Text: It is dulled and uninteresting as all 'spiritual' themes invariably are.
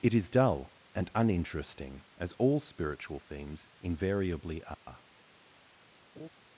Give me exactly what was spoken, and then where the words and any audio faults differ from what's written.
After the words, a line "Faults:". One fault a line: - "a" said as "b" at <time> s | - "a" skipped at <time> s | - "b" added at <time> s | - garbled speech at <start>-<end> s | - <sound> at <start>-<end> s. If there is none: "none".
It is dull and uninteresting as all 'spiritual' themes invariably are.
Faults:
- "dulled" said as "dull" at 0.3 s
- dropout at 4.7-4.9 s
- laugh at 6.1-6.3 s